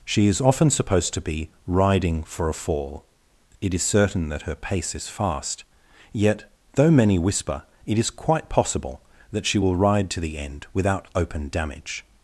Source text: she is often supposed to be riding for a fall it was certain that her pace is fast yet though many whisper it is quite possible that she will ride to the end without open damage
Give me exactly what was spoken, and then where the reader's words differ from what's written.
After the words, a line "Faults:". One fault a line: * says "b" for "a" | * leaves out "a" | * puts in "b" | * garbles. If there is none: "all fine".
she is often supposed to be riding for a fall it is certain that her pace is fast yet though many whisper it is quite possible that she will ride to the end without open damage
Faults:
* says "is" for "was"